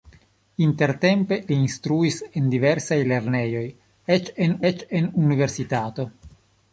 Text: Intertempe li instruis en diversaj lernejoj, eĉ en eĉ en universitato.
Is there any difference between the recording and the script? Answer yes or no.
no